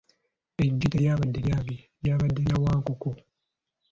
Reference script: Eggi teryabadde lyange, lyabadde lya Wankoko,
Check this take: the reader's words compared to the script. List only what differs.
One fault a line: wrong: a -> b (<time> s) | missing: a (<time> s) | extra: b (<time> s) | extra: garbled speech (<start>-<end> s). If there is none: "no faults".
no faults